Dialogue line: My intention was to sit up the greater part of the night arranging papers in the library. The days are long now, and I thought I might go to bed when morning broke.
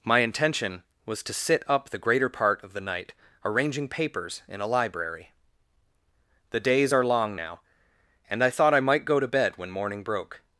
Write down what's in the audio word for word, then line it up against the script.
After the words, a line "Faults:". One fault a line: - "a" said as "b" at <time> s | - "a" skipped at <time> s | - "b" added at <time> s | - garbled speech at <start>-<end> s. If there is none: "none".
My intention was to sit up the greater part of the night arranging papers in a library. The days are long now, and I thought I might go to bed when morning broke.
Faults:
- "the" said as "a" at 4.6 s